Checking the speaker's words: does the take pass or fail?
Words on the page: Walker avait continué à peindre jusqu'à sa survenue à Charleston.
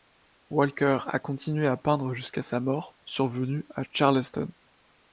fail